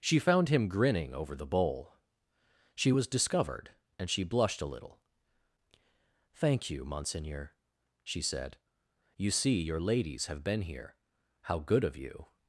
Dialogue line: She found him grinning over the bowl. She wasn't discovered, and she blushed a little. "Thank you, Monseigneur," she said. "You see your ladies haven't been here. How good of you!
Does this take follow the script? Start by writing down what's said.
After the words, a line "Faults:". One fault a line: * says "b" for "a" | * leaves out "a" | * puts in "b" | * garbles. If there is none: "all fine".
She found him grinning over the bowl. She was discovered, and she blushed a little. "Thank you, Monseigneur," she said. "You see your ladies have been here. How good of you!
Faults:
* says "was" for "wasn't"
* says "have" for "haven't"